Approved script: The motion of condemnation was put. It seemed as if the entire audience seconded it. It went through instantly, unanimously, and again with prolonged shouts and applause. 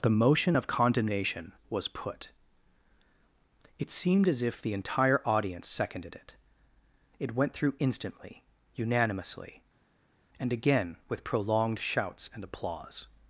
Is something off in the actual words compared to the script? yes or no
no